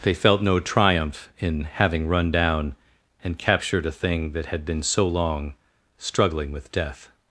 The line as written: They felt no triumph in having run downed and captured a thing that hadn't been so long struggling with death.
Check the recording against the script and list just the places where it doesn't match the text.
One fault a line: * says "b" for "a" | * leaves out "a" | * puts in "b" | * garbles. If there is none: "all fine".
* says "down" for "downed"
* says "had" for "hadn't"